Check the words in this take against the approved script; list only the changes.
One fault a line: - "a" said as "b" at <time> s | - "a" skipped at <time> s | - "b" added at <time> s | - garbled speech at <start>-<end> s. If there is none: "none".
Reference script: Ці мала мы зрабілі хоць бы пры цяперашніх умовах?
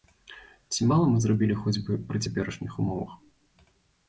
none